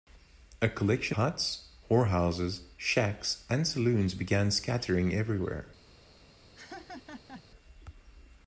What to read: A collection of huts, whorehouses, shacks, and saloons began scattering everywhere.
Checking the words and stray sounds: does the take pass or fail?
fail